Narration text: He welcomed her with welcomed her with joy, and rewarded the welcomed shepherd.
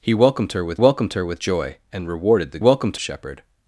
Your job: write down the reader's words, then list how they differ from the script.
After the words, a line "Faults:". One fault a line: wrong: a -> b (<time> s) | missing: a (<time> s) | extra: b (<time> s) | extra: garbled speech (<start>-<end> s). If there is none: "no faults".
He welcomed her with welcomed her with joy, and rewarded the welcomed shepherd.
Faults:
no faults